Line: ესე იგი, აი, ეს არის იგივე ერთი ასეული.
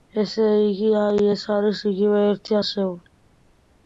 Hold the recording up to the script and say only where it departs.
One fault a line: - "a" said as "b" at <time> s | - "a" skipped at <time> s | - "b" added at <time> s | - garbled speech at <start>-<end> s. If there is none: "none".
none